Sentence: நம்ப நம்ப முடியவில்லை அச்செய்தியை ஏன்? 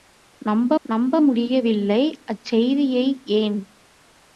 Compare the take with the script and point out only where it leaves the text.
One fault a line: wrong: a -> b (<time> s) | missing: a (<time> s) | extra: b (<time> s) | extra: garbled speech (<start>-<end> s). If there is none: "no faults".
no faults